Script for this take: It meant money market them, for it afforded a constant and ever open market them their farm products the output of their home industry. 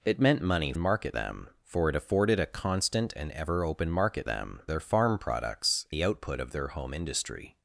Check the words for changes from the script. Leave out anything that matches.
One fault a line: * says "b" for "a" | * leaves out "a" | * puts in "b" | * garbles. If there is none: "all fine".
all fine